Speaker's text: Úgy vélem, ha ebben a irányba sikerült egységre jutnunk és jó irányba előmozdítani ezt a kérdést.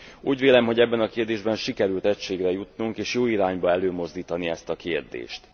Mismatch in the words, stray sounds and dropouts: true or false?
true